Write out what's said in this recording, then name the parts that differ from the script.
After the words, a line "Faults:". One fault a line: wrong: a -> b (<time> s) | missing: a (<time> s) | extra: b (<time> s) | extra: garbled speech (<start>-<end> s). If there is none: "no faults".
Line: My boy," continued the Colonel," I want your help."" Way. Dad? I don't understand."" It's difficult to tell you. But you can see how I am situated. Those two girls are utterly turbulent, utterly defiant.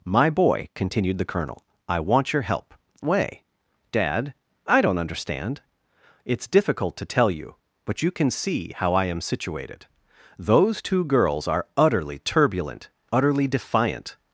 My boy," continued the Colonel," I want your help."" Way. Dad? I don't understand."" It's difficult to tell you. But you can see how I am situated. Those two girls are utterly turbulent, utterly defiant.
Faults:
no faults